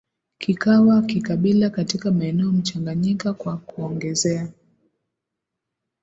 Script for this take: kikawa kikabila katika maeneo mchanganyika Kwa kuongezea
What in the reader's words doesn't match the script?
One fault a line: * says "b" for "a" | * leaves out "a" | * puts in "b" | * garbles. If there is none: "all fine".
all fine